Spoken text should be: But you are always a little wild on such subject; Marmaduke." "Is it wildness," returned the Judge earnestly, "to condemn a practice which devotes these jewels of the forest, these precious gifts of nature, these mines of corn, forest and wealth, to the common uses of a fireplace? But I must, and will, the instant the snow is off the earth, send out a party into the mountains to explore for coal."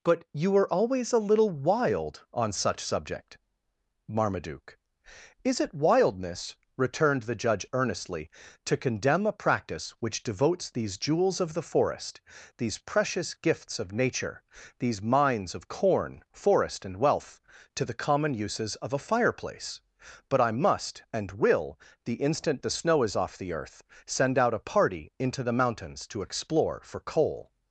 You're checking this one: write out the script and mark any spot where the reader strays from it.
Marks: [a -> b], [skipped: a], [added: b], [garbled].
But you are always a little wild on such subject; Marmaduke." "Is it wildness," returned the Judge earnestly, "to condemn a practice which devotes these jewels of the forest, these precious gifts of nature, these mines of corn, forest and wealth, to the common uses of a fireplace? But I must, and will, the instant the snow is off the earth, send out a party into the mountains to explore for coal."